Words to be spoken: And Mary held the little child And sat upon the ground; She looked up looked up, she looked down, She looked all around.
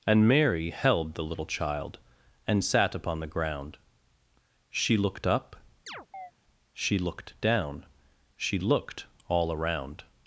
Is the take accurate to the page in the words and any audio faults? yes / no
no